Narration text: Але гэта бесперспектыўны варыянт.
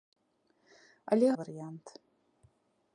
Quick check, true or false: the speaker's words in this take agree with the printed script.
false